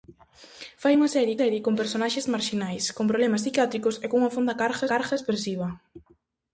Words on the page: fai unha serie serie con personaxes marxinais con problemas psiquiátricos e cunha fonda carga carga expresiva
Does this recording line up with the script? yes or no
yes